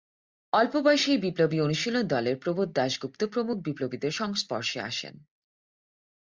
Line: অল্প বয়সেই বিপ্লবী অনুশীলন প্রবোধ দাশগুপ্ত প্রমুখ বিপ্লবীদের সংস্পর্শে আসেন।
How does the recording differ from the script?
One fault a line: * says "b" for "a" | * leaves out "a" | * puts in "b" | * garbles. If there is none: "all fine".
* puts in "দলের"